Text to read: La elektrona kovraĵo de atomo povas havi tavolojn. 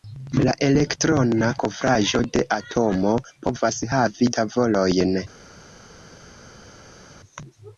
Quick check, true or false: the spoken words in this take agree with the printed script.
true